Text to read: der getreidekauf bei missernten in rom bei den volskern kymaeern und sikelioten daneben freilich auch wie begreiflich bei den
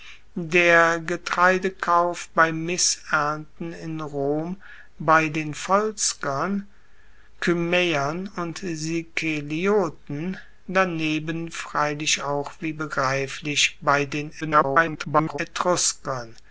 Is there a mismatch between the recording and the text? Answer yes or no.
yes